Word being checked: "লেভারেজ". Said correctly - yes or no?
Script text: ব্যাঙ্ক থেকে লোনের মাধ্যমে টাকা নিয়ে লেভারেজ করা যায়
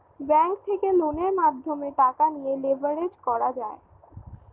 yes